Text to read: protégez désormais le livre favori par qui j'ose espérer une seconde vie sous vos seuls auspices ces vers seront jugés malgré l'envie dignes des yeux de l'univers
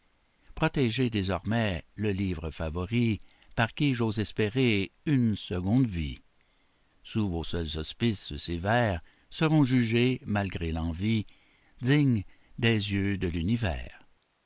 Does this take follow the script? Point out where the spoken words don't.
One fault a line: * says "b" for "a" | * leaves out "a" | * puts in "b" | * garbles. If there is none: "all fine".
all fine